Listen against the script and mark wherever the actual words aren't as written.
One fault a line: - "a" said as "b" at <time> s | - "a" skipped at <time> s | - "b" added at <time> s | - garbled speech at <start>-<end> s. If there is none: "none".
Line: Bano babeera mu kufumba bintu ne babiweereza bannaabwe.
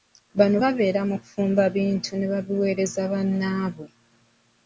none